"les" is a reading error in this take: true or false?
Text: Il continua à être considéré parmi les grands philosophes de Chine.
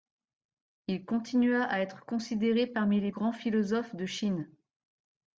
false